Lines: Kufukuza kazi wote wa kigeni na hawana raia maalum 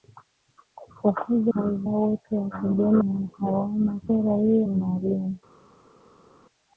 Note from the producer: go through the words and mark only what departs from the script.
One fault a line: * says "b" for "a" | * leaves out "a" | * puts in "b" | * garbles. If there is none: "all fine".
all fine